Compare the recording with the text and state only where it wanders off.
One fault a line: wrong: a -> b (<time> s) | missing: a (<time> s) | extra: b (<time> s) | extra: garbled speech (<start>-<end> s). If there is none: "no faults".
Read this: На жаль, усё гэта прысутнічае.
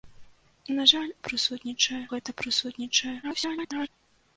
wrong: усё -> прысутнічае (1.3 s)
extra: garbled speech (3.2-3.9 s)